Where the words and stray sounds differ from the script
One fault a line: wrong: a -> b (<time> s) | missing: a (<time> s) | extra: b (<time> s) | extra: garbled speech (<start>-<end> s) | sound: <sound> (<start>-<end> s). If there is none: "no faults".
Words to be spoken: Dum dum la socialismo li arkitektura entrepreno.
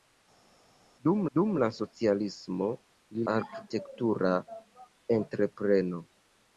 no faults